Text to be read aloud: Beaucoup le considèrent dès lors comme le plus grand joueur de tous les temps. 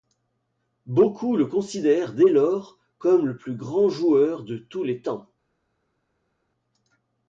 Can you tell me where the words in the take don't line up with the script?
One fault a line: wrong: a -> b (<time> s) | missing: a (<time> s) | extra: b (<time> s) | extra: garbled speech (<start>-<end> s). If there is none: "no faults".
no faults